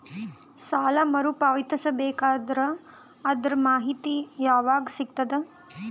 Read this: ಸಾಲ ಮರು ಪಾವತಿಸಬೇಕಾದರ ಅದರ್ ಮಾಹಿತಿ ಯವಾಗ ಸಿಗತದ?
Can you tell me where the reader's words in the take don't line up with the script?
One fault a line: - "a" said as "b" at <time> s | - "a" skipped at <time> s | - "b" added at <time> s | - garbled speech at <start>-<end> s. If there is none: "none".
none